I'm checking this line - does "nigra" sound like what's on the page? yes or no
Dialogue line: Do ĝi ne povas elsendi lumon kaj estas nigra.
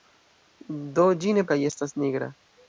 yes